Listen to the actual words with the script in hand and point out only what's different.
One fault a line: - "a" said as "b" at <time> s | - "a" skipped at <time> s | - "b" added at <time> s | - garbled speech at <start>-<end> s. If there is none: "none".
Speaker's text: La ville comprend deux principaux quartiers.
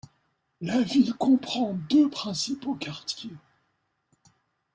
none